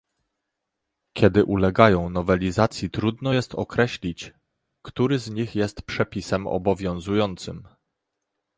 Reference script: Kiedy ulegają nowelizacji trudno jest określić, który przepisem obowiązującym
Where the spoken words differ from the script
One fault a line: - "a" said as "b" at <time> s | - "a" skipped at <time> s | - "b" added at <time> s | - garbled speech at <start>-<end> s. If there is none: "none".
- "z nich jest" added at 5.2 s